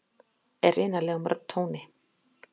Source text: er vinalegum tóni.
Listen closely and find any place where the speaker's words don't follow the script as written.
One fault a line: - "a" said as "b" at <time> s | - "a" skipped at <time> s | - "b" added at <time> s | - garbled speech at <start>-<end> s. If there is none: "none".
none